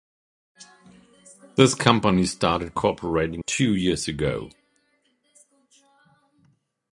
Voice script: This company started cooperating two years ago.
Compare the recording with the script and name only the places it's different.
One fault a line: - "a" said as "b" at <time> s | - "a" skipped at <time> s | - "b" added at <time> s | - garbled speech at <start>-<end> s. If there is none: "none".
none